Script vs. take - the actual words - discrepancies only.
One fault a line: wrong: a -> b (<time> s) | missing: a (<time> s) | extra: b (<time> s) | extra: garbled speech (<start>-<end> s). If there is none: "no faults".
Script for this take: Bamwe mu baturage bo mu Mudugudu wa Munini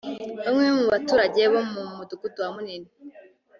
no faults